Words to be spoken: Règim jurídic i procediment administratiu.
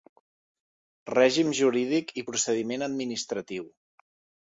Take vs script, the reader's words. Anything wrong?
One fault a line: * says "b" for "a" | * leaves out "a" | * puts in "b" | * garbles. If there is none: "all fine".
all fine